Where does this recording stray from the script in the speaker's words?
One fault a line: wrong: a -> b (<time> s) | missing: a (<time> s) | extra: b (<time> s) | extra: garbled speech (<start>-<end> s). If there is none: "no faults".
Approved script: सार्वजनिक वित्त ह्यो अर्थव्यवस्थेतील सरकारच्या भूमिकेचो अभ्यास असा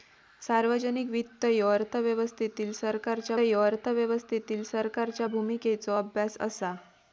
extra: ह्यो अर्थव्यवस्थेतील सरकारच्या (3.4 s)